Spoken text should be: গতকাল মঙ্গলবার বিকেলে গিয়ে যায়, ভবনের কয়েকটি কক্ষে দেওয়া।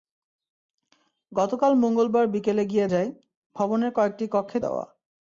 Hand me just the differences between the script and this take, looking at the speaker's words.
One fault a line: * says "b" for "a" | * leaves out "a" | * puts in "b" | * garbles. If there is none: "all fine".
all fine